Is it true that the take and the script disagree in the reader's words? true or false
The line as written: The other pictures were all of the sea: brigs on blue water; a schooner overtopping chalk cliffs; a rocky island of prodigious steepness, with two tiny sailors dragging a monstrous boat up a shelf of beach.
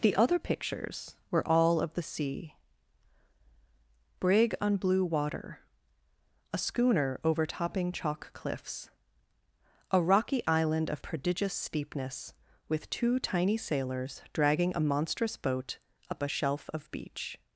true